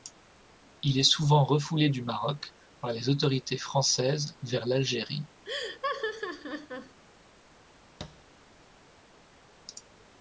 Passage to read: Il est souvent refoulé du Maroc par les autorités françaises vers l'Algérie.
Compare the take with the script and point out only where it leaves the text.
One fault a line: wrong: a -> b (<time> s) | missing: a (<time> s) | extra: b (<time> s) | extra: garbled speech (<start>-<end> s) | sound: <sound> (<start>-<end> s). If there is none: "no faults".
sound: laugh (5.4-7.0 s)
sound: thud (8.0-8.3 s)